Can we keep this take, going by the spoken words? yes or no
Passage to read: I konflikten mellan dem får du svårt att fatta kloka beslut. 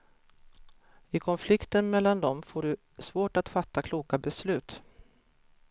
yes